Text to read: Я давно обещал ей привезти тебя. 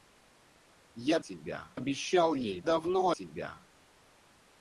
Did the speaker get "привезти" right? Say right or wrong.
wrong